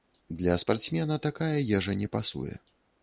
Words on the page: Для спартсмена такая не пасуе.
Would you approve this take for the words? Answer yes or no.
no